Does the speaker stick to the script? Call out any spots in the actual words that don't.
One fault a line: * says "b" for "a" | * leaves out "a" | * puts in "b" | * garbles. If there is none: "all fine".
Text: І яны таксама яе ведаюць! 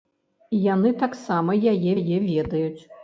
* puts in "яе"